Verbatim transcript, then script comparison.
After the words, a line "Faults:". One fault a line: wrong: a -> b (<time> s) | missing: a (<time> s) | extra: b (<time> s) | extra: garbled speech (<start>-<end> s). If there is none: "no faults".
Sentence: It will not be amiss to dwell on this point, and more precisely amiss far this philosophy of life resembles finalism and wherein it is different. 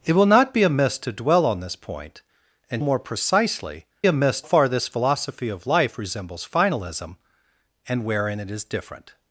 It will not be amiss to dwell on this point, and more precisely amiss far this philosophy of life resembles finalism and wherein it is different.
Faults:
no faults